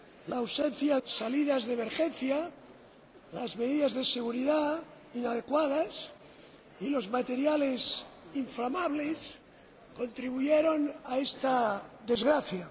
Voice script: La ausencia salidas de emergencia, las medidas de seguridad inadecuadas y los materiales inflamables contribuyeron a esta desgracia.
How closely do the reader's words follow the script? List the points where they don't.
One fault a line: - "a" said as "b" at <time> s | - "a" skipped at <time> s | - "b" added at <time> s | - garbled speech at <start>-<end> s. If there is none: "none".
none